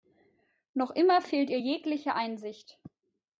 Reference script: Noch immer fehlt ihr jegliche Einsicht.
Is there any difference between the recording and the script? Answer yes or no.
no